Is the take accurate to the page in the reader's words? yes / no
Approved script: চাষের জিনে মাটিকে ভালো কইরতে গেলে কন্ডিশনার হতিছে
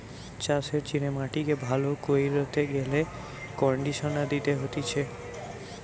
no